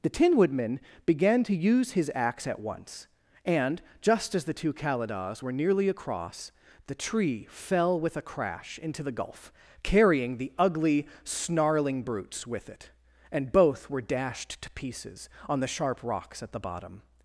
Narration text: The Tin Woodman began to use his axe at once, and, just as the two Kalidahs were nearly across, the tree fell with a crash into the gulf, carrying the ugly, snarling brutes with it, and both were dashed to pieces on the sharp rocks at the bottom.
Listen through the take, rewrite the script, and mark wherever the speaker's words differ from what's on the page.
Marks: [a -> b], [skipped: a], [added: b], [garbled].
The Tin Woodman began to use his axe at once, and, just as the two Kalidahs were nearly across, the tree fell with a crash into the gulf, carrying the ugly, snarling brutes with it, and both were dashed to pieces on the sharp rocks at the bottom.